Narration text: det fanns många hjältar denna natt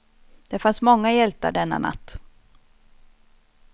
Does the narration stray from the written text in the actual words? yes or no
no